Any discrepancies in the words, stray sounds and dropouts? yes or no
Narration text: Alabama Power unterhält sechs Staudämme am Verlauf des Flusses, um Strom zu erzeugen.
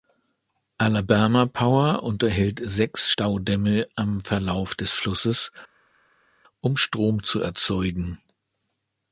no